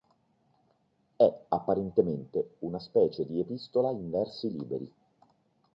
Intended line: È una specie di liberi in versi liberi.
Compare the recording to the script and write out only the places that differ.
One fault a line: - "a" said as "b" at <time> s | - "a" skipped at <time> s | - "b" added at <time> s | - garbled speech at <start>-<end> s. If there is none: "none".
- "apparentemente" added at 1.5 s
- "liberi" said as "epistola" at 3.4 s